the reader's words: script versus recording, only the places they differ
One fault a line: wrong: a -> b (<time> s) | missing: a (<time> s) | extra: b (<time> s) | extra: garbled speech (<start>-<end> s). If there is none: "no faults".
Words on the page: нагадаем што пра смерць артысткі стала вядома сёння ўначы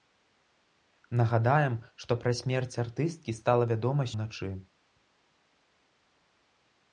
missing: сёння (4.0 s)